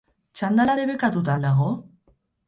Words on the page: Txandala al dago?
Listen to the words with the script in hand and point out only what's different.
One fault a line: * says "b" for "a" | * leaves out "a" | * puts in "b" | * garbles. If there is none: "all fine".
* puts in "debekatuta"